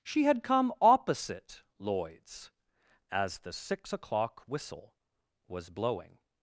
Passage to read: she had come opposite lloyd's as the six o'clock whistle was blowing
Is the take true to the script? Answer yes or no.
yes